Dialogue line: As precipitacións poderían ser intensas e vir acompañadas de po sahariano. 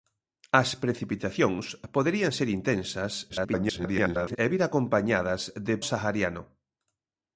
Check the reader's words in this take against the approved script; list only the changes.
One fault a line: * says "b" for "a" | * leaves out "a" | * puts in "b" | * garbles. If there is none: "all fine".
* garbles
* leaves out "po"